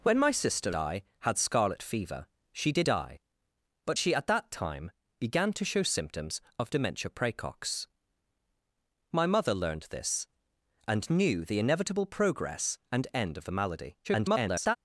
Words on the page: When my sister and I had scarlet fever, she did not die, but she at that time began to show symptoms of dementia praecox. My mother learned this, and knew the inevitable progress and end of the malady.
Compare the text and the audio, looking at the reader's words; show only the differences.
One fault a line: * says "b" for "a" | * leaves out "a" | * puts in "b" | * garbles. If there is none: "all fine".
* leaves out "and"
* leaves out "not"
* garbles